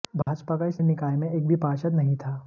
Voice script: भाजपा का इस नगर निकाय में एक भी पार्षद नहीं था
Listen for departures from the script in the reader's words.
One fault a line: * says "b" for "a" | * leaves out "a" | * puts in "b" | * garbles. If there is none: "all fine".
* leaves out "नगर"